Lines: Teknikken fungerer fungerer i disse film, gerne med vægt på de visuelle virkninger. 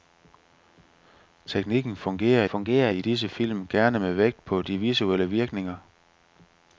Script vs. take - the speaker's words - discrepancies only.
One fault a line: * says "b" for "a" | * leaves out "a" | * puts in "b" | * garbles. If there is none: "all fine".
all fine